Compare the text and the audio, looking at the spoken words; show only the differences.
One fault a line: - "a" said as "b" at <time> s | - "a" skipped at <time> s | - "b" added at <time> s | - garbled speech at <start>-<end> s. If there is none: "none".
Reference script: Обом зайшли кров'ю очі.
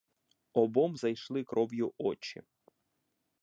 none